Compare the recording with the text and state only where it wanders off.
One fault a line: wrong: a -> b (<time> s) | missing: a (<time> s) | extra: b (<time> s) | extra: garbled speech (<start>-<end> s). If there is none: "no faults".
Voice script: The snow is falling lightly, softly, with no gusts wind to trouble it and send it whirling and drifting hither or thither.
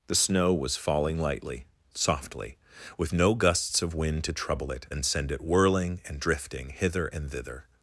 wrong: is -> was (0.5 s)
extra: of (3.8 s)
wrong: or -> and (7.1 s)